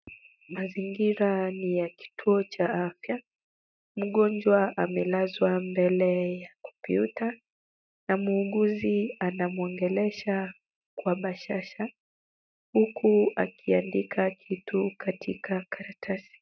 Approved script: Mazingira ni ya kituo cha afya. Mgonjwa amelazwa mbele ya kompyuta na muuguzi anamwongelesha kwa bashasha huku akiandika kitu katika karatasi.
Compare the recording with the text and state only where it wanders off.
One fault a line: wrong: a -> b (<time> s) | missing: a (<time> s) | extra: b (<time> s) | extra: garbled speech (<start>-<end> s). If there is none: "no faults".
no faults